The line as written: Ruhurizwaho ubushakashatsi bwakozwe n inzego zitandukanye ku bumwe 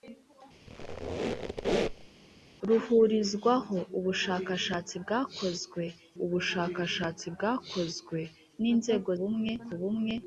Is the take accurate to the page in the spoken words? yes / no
no